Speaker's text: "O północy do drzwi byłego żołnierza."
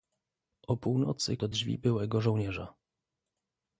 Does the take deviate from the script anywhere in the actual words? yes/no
no